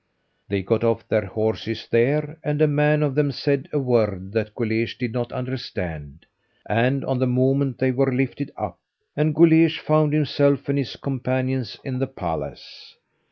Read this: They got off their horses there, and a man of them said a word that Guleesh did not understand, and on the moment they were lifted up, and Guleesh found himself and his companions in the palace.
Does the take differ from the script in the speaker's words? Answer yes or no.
no